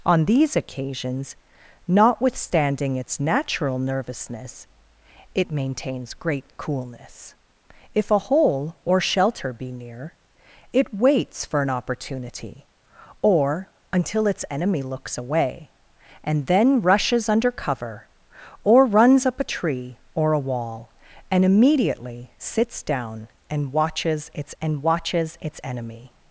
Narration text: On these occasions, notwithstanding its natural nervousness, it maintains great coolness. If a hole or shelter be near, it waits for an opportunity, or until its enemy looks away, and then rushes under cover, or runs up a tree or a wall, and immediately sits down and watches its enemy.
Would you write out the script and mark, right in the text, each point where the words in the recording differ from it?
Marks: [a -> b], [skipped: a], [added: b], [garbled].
On these occasions, notwithstanding its natural nervousness, it maintains great coolness. If a hole or shelter be near, it waits for an opportunity, or until its enemy looks away, and then rushes under cover, or runs up a tree or a wall, and immediately sits down and watches its [added: and watches its] enemy.